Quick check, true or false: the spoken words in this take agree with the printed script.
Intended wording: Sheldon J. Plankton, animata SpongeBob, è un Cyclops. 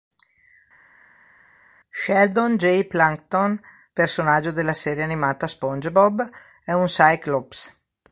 false